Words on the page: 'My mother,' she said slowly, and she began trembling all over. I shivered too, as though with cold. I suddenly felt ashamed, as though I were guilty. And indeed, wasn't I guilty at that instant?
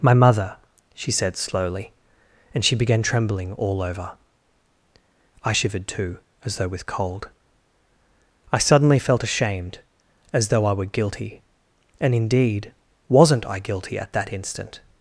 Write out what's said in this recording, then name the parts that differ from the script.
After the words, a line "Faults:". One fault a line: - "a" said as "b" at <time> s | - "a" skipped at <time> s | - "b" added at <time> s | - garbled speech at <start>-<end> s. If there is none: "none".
'My mother,' she said slowly, and she began trembling all over. I shivered too, as though with cold. I suddenly felt ashamed, as though I were guilty. And indeed, wasn't I guilty at that instant?
Faults:
none